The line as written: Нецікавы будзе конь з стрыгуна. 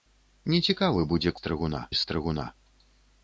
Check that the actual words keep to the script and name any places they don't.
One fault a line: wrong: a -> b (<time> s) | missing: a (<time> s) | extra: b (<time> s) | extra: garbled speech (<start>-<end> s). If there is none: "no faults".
wrong: конь -> стрыгуна (1.4 s)